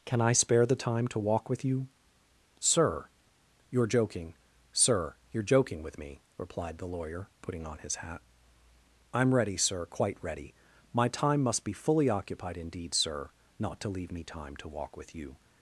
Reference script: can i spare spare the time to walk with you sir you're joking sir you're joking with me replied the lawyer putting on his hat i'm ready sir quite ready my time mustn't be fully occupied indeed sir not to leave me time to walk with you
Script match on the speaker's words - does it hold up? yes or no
no